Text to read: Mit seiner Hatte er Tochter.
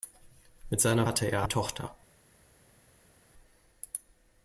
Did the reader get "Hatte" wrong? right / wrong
right